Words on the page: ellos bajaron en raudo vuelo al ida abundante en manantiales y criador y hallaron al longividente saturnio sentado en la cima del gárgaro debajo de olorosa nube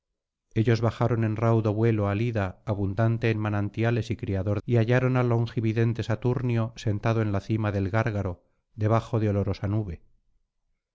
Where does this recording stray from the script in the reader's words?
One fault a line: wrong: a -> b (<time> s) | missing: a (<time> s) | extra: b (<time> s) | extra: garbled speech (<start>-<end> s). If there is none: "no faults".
no faults